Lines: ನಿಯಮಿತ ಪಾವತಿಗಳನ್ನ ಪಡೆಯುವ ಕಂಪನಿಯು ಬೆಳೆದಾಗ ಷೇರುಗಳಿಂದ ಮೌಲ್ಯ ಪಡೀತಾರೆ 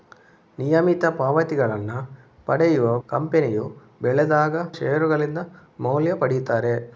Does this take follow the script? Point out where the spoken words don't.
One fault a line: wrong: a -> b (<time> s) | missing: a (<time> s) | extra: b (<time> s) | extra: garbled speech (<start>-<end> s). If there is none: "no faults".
no faults